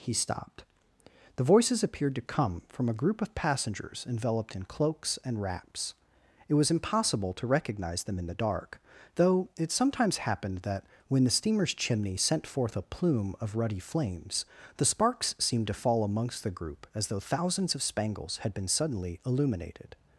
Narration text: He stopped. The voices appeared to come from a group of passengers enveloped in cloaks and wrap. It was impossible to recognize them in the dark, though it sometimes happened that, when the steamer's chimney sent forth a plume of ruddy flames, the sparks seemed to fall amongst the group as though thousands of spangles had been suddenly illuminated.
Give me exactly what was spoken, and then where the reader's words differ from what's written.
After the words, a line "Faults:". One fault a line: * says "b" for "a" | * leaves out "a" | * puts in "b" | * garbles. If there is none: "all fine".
He stopped. The voices appeared to come from a group of passengers enveloped in cloaks and wraps. It was impossible to recognize them in the dark, though it sometimes happened that, when the steamer's chimney sent forth a plume of ruddy flames, the sparks seemed to fall amongst the group as though thousands of spangles had been suddenly illuminated.
Faults:
* says "wraps" for "wrap"